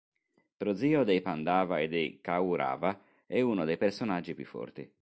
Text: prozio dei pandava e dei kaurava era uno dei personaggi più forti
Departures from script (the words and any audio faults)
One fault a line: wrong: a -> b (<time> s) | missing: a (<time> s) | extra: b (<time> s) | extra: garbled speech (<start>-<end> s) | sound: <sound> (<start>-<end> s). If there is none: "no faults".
wrong: era -> è (3.2 s)